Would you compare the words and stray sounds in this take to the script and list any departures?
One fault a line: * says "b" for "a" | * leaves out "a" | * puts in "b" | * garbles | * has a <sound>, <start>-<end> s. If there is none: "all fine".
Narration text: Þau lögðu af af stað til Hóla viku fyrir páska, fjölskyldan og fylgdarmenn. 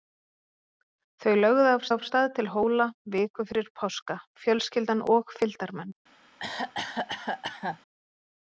* has a cough, 6.4-7.8 s